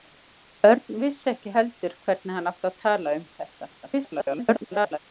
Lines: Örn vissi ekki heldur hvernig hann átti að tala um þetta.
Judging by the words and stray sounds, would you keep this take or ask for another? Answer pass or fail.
fail